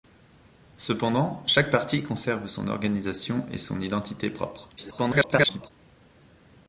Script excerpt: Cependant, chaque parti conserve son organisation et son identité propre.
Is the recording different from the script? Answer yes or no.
yes